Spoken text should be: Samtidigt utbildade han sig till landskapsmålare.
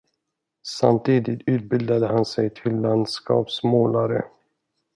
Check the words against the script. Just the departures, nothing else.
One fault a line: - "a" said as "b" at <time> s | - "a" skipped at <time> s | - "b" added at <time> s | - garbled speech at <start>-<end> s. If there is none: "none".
none